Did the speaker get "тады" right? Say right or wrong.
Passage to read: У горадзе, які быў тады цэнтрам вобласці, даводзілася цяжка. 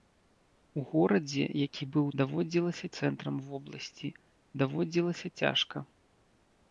wrong